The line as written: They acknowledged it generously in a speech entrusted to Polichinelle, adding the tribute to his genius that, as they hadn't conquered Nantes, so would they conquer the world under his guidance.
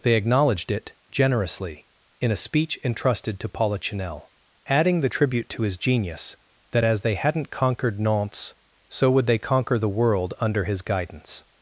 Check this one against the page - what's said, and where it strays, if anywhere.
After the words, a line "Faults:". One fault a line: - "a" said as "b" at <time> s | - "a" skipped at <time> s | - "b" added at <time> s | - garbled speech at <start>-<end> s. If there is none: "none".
They acknowledged it generously in a speech entrusted to Polichinelle, adding the tribute to his genius that, as they hadn't conquered Nantes, so would they conquer the world under his guidance.
Faults:
none